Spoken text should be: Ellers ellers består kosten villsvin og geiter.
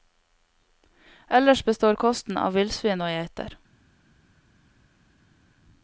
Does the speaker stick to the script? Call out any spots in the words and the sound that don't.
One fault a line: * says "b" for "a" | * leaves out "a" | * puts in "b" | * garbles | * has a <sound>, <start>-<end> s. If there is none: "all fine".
* leaves out "ellers"
* puts in "av"